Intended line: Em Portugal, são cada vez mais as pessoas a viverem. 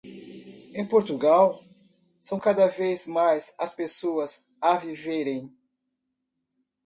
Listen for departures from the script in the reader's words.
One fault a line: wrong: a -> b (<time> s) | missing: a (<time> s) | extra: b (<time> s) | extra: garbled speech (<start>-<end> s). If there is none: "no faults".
no faults